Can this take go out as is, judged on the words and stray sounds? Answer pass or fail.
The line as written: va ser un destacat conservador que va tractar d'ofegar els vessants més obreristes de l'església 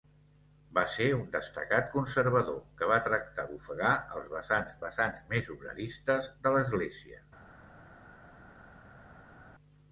fail